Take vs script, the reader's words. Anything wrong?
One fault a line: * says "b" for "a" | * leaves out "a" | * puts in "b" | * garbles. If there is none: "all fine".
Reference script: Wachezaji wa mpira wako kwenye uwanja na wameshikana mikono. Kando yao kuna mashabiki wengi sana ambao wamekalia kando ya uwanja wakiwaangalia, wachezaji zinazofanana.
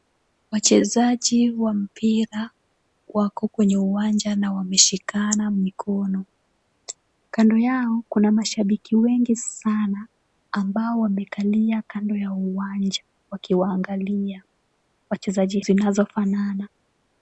all fine